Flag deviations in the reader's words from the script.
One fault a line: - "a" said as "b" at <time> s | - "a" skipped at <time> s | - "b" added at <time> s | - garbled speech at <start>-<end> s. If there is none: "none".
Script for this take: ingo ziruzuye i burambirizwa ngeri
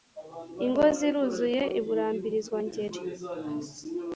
none